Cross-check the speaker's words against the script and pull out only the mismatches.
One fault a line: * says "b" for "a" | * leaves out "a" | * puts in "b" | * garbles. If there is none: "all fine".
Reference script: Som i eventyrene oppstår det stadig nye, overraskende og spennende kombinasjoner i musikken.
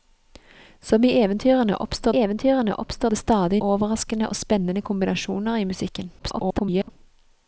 * puts in "eventyrene oppstår"
* leaves out "nye"
* garbles